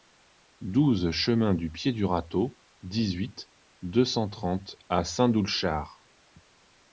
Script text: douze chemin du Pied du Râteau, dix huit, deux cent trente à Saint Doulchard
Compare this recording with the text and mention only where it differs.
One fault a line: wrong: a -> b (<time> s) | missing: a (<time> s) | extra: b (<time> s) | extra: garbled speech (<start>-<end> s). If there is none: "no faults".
no faults